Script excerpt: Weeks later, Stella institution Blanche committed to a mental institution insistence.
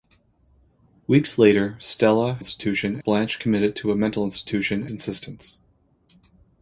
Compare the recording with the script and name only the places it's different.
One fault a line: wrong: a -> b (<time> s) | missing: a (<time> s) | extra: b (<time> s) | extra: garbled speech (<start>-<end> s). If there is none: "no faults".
no faults